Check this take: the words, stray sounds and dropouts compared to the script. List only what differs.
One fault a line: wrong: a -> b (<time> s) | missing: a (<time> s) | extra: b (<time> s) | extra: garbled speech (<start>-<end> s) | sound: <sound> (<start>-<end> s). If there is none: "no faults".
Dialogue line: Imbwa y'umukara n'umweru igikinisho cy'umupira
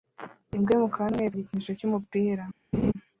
sound: laugh (2.7-2.9 s)